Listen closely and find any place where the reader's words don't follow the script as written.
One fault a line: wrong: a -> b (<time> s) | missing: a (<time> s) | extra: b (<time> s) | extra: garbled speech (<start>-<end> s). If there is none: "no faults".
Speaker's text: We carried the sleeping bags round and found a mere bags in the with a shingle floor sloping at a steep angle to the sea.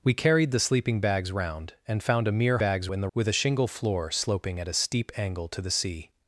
no faults